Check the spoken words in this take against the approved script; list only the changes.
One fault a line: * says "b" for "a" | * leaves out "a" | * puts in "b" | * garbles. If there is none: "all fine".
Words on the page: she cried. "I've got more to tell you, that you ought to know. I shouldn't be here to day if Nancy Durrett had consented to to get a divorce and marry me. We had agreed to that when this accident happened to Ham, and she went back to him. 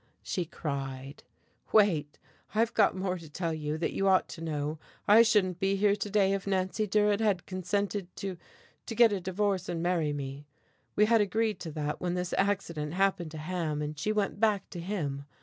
* puts in "Wait"